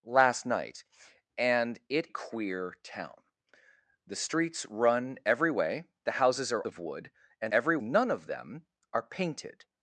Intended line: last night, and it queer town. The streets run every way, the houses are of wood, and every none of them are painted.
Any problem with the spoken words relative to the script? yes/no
no